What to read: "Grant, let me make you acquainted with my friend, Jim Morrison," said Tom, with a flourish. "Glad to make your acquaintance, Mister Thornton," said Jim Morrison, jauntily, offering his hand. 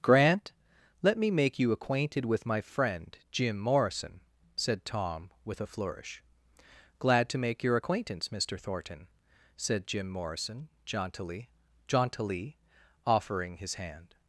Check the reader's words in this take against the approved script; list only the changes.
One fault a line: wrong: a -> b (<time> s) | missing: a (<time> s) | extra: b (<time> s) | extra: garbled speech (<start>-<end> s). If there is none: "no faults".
extra: jauntily (11.9 s)